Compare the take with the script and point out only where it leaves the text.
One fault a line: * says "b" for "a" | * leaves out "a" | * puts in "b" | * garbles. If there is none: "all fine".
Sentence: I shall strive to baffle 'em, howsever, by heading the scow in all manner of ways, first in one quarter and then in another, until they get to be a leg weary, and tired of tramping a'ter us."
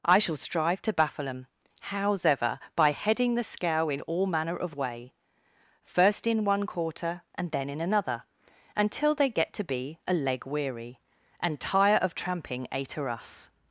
* says "way" for "ways"
* says "tire" for "tired"